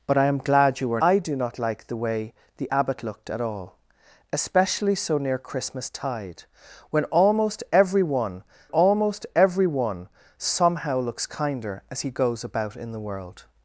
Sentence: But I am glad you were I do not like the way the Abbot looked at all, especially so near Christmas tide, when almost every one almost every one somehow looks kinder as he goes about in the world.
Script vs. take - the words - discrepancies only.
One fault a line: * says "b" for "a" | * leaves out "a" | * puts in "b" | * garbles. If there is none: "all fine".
all fine